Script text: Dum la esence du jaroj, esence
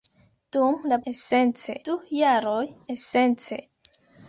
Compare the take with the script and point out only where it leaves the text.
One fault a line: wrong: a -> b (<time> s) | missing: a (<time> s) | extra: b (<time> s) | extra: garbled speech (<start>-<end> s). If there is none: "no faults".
no faults